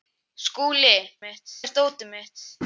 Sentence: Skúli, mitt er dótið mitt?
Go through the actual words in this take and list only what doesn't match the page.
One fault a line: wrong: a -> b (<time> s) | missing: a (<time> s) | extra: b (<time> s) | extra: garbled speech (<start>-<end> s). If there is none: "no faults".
no faults